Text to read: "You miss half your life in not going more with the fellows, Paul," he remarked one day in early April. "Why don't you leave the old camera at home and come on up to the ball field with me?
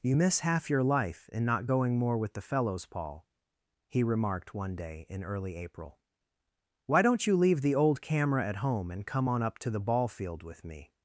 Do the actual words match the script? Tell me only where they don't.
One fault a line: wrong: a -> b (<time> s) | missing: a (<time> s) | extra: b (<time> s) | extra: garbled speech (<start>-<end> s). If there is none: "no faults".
no faults